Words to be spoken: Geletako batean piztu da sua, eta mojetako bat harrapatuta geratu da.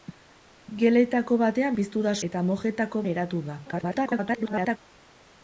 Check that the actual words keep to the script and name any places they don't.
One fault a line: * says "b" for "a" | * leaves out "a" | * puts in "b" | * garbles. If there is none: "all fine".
* leaves out "sua"
* leaves out "bat harrapatuta"
* garbles